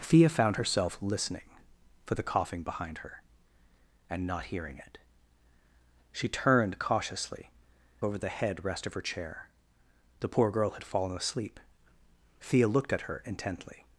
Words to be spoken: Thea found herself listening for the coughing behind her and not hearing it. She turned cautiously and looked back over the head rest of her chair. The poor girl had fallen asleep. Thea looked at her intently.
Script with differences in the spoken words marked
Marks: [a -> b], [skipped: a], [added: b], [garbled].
Thea found herself listening for the coughing behind her and not hearing it. She turned cautiously [skipped: and looked back] over the head rest of her chair. The poor girl had fallen asleep. Thea looked at her intently.